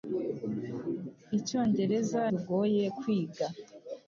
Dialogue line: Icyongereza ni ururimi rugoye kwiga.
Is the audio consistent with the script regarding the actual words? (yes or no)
no